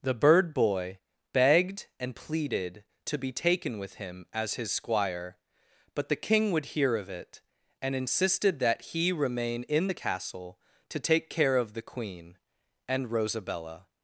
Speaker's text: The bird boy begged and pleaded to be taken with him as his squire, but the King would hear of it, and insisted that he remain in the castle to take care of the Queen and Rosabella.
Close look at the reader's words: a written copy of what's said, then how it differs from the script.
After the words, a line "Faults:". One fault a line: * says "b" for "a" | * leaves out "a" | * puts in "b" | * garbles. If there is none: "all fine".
The bird boy begged and pleaded to be taken with him as his squire, but the King would hear of it, and insisted that he remain in the castle to take care of the Queen and Rosabella.
Faults:
all fine